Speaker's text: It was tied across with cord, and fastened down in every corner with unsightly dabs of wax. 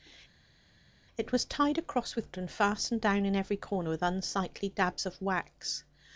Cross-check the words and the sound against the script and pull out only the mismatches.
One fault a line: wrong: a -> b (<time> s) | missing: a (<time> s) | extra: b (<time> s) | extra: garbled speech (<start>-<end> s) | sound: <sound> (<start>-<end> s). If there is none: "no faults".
missing: cord (2.3 s)